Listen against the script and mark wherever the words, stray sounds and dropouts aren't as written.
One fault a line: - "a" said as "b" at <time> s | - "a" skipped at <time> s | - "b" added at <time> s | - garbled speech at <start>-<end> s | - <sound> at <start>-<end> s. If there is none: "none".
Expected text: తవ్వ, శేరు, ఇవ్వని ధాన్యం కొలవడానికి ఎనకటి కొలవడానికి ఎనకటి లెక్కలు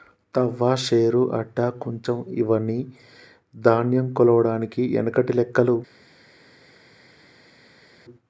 - "అడ్డ కుంచం" added at 1.3 s
- "కొలవడానికి ఎనకటి" skipped at 5.3 s